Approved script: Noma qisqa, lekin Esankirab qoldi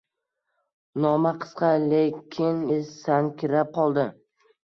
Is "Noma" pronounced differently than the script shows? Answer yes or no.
no